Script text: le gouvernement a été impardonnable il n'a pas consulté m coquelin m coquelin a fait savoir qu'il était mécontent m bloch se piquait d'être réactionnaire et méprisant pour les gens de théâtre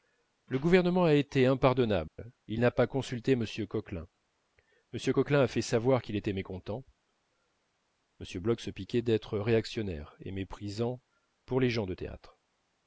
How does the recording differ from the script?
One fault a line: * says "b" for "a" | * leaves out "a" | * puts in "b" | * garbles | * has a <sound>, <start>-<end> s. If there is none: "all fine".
* has a dropout, 2.1-2.2 s